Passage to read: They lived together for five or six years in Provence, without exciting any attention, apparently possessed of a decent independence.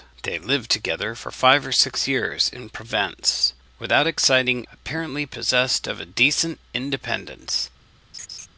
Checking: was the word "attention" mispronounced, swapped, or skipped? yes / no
yes